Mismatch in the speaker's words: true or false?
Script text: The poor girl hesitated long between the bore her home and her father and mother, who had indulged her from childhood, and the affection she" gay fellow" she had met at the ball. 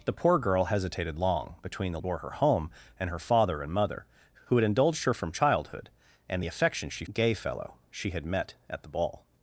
false